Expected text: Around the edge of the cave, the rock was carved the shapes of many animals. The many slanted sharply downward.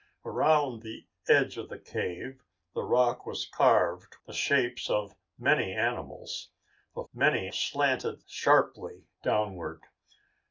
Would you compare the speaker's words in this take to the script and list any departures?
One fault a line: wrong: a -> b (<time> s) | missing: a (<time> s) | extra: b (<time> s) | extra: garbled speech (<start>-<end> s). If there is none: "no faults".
no faults